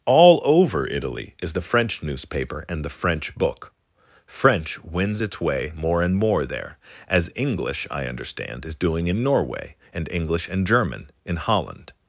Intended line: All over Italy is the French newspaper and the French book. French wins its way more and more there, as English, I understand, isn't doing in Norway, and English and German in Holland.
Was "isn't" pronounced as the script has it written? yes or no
no